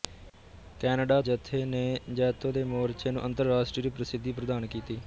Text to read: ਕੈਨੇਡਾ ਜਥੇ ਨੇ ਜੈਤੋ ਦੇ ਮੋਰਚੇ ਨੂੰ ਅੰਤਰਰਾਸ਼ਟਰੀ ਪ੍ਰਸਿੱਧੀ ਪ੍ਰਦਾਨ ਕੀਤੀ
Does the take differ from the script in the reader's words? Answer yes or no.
no